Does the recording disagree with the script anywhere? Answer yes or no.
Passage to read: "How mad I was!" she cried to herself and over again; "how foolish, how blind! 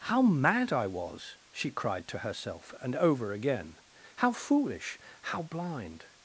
no